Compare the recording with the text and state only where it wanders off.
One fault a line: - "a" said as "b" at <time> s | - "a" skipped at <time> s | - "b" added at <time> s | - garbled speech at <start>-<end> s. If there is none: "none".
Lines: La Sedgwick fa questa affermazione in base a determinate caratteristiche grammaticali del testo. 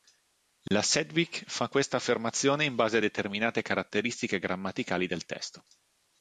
none